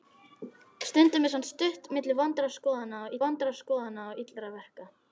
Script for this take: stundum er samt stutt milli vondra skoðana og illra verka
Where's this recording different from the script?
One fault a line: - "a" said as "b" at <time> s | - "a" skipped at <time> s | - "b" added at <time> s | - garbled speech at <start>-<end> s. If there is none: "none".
- "vondra skoðana og" added at 3.3 s